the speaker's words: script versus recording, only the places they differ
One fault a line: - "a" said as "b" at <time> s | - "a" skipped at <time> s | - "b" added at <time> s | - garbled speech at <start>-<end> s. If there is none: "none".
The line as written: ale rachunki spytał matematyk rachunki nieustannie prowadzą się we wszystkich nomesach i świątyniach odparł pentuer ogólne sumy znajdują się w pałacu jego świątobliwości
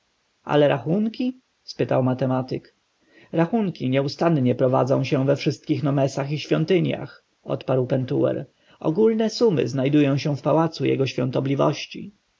none